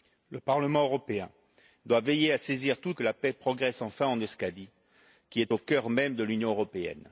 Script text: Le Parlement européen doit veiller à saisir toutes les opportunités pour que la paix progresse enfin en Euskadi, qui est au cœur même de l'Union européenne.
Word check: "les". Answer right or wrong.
wrong